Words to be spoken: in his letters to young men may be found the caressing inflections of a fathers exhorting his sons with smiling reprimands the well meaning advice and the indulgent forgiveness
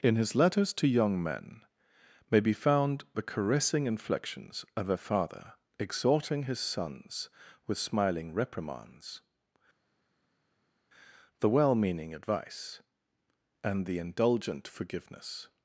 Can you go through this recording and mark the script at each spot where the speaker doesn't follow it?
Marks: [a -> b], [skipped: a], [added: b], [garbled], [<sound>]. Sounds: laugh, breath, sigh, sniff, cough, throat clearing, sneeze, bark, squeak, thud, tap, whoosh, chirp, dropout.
in his letters to young men may be found the caressing inflections of a [fathers -> father] exhorting his sons with smiling reprimands the well meaning advice and the indulgent forgiveness